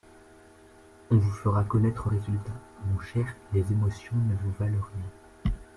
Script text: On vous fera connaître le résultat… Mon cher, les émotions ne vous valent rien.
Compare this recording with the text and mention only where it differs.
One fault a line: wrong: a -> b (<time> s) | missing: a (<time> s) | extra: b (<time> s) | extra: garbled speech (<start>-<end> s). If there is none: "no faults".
missing: le (2.1 s)